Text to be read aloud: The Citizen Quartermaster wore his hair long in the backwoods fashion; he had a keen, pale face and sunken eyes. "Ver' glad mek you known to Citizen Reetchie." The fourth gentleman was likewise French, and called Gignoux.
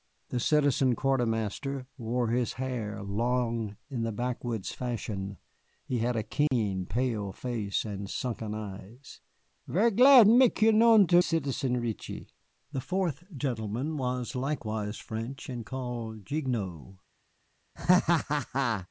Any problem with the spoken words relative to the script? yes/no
no